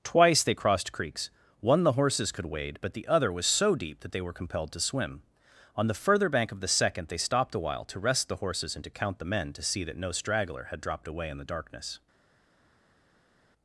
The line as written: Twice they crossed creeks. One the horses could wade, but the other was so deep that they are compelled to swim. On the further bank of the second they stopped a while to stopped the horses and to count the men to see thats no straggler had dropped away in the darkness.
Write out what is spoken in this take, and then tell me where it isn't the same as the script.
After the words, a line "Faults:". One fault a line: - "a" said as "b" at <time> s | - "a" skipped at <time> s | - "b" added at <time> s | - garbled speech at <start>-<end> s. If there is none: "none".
Twice they crossed creeks. One the horses could wade, but the other was so deep that they were compelled to swim. On the further bank of the second they stopped a while to rest the horses and to count the men to see that no straggler had dropped away in the darkness.
Faults:
- "are" said as "were" at 4.2 s
- "stopped" said as "rest" at 8.0 s
- "thats" said as "that" at 9.8 s